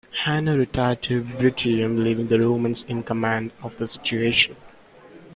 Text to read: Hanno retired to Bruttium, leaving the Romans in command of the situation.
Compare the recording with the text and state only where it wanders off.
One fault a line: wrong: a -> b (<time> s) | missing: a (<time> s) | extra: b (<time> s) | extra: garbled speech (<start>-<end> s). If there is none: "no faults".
no faults